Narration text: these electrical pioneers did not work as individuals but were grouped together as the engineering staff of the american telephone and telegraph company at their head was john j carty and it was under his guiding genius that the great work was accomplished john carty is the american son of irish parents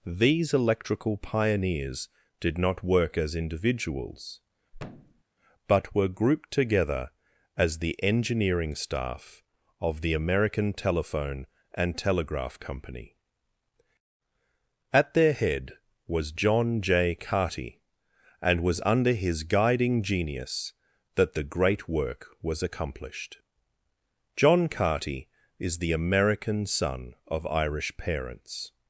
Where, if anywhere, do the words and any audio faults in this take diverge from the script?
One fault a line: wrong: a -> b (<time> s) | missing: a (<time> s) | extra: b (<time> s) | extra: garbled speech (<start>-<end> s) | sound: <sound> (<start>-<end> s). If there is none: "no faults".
sound: thud (4.7-5.2 s)
missing: it (18.6 s)